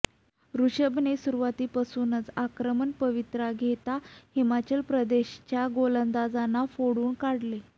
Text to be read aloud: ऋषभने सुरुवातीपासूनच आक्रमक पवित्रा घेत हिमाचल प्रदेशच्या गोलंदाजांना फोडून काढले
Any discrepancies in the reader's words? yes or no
no